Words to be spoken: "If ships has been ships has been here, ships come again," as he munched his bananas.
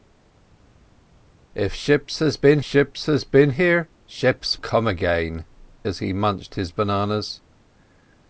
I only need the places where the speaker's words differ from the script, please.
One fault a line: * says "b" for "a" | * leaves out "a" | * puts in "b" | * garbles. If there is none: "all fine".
all fine